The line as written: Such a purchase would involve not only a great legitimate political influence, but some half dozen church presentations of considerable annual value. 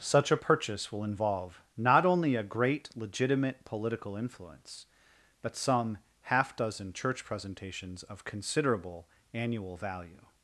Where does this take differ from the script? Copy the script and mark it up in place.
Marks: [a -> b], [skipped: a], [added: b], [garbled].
Such a purchase [would -> will] involve not only a great legitimate political influence, but some half dozen church presentations of considerable annual value.